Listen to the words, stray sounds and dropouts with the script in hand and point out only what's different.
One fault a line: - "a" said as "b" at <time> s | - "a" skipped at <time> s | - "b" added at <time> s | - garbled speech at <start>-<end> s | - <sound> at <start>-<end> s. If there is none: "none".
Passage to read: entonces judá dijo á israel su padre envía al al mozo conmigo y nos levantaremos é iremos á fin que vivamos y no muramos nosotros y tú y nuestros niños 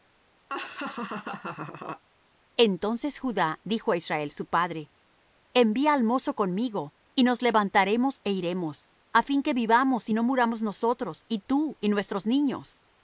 - laugh at 0.5-2.0 s
- "al" skipped at 6.0 s